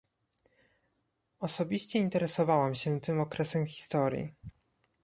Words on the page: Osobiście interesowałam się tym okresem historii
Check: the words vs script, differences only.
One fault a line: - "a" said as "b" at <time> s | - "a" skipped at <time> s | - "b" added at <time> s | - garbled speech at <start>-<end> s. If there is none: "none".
none